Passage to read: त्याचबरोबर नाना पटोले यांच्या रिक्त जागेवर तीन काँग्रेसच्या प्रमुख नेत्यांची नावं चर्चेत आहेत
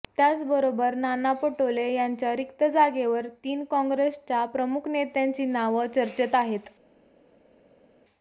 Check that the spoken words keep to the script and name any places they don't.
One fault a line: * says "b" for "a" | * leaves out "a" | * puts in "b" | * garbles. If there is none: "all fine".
all fine